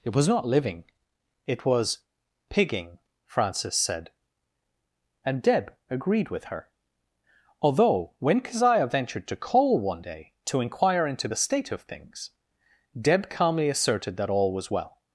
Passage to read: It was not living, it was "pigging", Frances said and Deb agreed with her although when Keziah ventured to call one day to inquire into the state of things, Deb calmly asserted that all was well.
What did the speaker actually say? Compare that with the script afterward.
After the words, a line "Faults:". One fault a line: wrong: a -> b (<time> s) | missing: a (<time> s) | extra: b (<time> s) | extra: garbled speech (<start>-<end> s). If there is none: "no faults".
It was not living, it was "pigging", Frances said and Deb agreed with her although when Keziah ventured to call one day to inquire into the state of things, Deb calmly asserted that all was well.
Faults:
no faults